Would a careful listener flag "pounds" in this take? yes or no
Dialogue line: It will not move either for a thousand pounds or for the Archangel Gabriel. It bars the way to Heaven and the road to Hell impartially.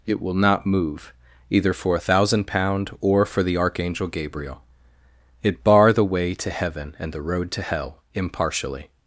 yes